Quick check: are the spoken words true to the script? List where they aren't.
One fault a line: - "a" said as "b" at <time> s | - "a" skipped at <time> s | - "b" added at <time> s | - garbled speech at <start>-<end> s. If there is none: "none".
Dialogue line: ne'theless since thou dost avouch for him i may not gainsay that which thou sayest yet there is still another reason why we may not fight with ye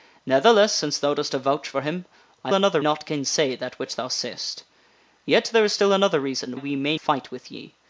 - "may" said as "another" at 2.5 s
- "why" skipped at 6.5 s
- "not" skipped at 7.0 s